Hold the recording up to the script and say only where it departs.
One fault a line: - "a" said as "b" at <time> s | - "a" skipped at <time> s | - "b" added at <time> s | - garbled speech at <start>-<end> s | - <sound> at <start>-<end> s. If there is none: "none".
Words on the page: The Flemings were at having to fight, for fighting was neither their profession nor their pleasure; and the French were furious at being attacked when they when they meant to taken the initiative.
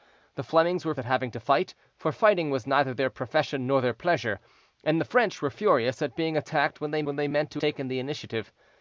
none